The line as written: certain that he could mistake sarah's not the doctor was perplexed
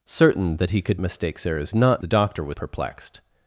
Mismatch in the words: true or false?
false